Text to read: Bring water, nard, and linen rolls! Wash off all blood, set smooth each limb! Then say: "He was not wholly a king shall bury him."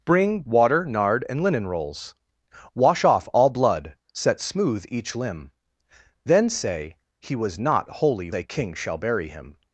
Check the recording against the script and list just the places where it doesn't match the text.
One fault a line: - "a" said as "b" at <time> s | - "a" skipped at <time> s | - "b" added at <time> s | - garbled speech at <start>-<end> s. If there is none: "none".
none